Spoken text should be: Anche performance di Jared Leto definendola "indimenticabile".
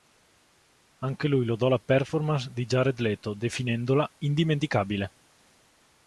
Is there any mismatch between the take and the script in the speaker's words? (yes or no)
yes